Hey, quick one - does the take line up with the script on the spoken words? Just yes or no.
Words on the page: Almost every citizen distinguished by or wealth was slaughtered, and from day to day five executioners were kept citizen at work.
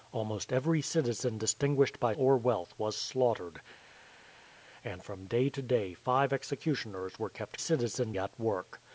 yes